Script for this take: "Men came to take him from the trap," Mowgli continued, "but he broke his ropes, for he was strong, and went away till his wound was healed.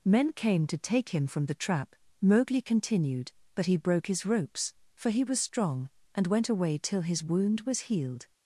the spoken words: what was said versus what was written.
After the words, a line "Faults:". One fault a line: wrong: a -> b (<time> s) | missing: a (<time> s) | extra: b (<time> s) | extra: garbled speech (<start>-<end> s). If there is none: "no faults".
"Men came to take him from the trap," Mowgli continued, "but he broke his ropes, for he was strong, and went away till his wound was healed.
Faults:
no faults